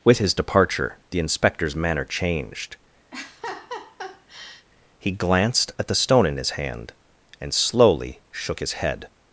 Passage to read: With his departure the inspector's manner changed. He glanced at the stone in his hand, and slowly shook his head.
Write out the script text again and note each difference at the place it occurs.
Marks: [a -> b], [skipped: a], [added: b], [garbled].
With his departure the inspector's manner changed. He glanced at the stone in his hand, and slowly shook his head.